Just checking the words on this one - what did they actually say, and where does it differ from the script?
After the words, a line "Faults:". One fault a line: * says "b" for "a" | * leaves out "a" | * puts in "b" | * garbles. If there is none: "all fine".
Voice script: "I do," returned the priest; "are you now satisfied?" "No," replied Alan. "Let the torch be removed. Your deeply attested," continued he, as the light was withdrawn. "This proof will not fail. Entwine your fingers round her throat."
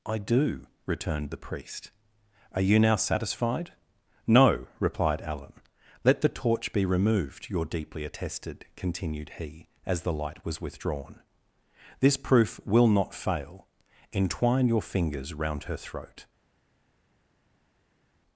"I do," returned the priest; "are you now satisfied?" "No," replied Alan. "Let the torch be removed. Your deeply attested," continued he, as the light was withdrawn. "This proof will not fail. Entwine your fingers round her throat."
Faults:
all fine